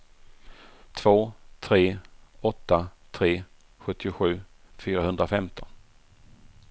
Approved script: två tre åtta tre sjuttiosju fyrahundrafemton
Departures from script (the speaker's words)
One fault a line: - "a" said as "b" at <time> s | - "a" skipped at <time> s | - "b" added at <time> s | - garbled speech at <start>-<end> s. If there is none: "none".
none